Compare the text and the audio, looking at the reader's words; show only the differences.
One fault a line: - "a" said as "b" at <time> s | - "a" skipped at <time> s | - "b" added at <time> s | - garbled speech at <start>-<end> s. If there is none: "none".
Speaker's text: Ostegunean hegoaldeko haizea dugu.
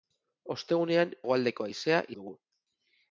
none